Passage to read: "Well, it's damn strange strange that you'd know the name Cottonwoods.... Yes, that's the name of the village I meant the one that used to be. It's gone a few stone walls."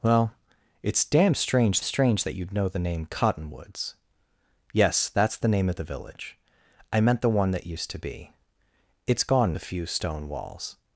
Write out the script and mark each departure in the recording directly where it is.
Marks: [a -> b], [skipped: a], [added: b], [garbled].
"Well, it's damn strange strange that you'd know the name Cottonwoods.... Yes, that's the name of the village I meant the one that used to be. It's gone a few stone walls."